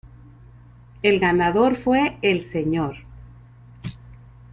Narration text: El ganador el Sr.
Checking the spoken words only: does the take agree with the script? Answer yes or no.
no